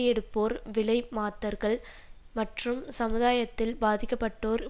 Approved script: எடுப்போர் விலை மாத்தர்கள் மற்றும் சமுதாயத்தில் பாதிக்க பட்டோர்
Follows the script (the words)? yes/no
yes